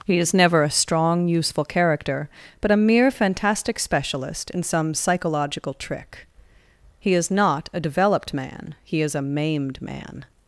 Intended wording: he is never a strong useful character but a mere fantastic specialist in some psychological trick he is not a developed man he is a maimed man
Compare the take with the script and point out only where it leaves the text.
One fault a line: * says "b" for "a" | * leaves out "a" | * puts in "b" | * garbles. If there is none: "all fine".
all fine